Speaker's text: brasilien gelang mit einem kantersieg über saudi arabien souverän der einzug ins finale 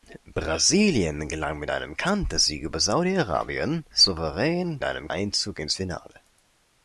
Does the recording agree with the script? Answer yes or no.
no